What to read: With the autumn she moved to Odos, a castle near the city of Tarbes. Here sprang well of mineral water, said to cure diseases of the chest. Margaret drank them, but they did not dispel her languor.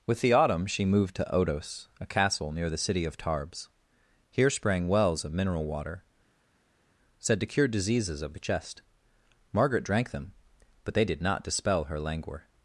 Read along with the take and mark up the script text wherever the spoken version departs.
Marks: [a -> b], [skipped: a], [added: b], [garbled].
With the autumn she moved to Odos, a castle near the city of Tarbes. Here sprang [well -> wells] of mineral water, said to cure diseases of the chest. Margaret drank them, but they did not dispel her languor.